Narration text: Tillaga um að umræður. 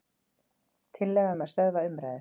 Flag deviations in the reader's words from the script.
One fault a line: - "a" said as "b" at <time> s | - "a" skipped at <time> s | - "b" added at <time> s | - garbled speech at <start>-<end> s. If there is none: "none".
- "stöðva" added at 1.5 s